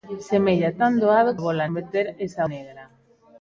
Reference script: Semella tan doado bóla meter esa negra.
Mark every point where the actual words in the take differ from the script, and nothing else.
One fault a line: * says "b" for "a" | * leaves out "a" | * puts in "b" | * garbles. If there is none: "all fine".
all fine